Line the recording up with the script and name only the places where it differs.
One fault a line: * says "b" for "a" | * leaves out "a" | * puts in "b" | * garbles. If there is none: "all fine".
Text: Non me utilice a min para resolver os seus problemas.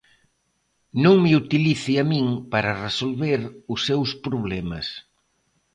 all fine